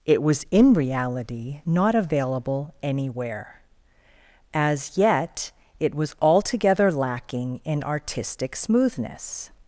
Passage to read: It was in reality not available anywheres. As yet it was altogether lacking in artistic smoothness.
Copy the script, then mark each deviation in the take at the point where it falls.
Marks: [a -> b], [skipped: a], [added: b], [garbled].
It was in reality not available [anywheres. -> anywhere] As yet it was altogether lacking in artistic smoothness.